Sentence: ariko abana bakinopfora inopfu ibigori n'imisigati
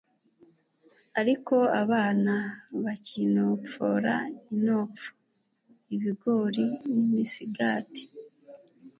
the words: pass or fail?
pass